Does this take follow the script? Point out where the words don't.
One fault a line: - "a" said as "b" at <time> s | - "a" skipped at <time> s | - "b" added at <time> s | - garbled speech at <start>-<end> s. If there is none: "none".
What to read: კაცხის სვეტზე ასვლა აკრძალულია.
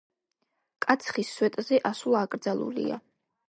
none